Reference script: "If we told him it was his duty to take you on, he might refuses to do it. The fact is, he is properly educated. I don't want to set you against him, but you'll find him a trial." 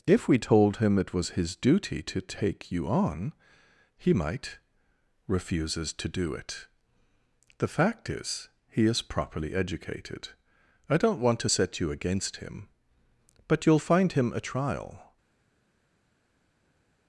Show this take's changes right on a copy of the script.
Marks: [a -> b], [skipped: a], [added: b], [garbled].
"If we told him it was his duty to take you on, he might refuses to do it. The fact is, he is properly educated. I don't want to set you against him, but you'll find him a trial."